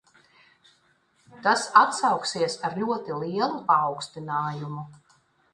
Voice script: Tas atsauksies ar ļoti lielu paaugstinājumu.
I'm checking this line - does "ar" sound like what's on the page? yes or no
yes